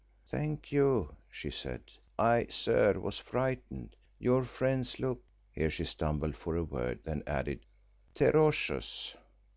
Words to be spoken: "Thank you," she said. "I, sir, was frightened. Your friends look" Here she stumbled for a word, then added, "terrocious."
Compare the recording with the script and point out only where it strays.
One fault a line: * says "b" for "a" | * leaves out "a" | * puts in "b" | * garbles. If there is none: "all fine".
all fine